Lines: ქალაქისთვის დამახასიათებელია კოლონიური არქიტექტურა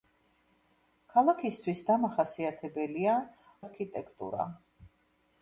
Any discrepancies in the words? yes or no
yes